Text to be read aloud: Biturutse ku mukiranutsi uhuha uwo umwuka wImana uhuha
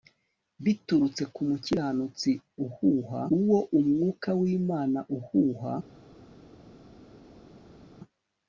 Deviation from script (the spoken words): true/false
false